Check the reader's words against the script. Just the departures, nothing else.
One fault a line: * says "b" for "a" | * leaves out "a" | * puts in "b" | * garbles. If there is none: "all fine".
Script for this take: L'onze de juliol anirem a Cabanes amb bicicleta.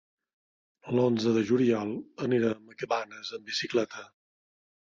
all fine